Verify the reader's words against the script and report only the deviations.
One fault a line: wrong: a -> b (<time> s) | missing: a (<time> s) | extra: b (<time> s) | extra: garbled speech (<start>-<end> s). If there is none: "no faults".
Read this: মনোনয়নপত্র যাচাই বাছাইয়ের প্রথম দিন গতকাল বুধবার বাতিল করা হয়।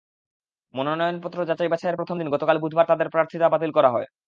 extra: তাঁদের প্রার্থিতা (2.9 s)